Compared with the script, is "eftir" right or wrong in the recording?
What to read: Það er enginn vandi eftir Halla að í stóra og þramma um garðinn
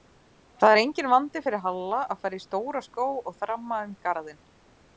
wrong